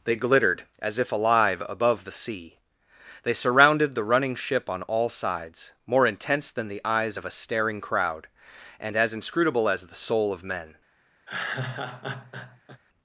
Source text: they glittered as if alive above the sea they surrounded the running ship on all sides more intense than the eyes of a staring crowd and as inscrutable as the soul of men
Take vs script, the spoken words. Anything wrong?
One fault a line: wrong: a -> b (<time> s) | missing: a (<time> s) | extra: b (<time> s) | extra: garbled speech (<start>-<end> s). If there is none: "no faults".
no faults